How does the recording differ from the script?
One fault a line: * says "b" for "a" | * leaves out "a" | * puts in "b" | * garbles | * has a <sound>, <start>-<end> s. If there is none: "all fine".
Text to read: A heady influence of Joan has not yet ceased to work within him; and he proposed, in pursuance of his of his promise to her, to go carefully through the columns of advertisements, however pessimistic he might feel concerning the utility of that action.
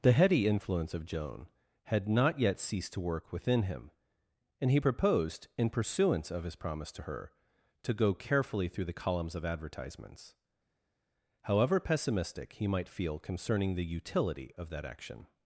* says "The" for "A"
* says "had" for "has"
* leaves out "of his"